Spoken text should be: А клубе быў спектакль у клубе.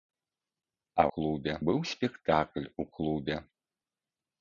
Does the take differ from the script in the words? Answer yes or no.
no